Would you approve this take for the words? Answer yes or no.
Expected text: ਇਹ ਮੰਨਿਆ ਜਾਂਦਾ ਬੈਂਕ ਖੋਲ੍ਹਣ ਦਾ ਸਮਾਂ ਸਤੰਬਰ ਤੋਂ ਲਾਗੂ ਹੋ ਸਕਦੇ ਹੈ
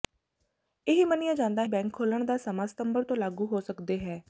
yes